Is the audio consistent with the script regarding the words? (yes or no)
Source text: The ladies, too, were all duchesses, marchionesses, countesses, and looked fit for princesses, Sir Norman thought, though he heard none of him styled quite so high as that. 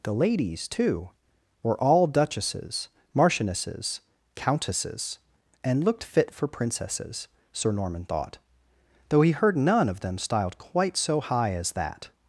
no